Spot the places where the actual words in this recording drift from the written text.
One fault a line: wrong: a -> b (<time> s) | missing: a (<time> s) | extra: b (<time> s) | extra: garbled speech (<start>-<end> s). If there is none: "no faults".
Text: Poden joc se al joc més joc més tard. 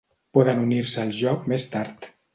wrong: joc -> unir (0.6 s)
missing: joc més (1.7 s)